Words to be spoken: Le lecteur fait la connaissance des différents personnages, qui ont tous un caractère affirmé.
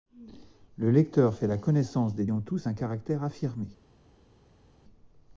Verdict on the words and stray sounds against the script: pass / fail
fail